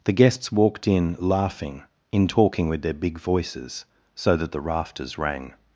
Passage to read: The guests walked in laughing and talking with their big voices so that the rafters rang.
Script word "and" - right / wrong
wrong